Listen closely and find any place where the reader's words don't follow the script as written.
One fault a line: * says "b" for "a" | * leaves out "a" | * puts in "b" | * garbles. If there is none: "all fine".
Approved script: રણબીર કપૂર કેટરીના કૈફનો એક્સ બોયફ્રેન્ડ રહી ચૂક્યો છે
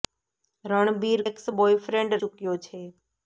* leaves out "કપૂર કેટરીના કૈફનો"
* leaves out "રહી"